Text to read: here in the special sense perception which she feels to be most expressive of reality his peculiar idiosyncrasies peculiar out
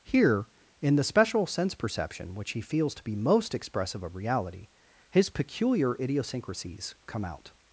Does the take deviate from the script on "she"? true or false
true